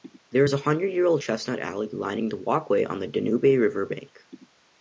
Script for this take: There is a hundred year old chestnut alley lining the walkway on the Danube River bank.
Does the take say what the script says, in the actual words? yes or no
yes